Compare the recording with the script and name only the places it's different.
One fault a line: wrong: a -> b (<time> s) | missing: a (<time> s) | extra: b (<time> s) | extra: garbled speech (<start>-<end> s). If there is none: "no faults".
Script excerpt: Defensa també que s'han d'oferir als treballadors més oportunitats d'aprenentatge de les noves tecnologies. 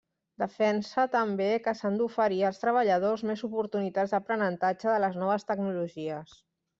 no faults